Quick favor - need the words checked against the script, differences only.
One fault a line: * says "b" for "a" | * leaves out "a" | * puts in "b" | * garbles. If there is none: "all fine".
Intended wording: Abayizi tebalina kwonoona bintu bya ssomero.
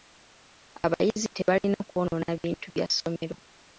all fine